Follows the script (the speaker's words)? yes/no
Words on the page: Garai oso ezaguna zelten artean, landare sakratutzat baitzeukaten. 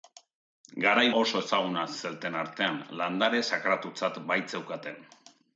yes